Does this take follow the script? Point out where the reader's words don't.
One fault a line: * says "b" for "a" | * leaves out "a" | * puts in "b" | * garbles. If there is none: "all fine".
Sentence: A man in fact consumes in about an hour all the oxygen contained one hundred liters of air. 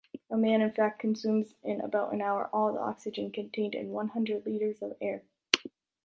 * puts in "in"